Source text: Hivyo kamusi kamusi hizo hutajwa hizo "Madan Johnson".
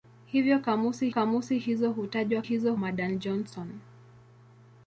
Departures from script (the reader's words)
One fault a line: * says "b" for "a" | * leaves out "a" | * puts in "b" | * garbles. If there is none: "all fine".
all fine